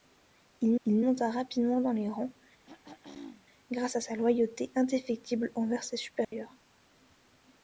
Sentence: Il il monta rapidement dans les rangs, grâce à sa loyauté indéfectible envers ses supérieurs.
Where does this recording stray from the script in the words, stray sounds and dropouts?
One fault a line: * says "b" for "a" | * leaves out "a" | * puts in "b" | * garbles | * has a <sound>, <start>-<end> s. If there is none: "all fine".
* has a throat clearing, 2.6-3.5 s
* has a dropout, 6.2-6.3 s